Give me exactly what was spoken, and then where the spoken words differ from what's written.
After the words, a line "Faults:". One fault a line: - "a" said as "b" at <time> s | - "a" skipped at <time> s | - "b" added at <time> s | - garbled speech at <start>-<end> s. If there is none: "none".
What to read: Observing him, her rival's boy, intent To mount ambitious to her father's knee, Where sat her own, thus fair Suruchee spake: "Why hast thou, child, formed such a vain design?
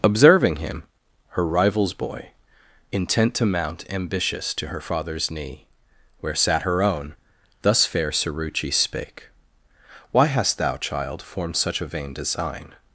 Observing him, her rival's boy, intent To mount ambitious to her father's knee, Where sat her own, thus fair Suruchee spake: "Why hast thou, child, formed such a vain design?
Faults:
none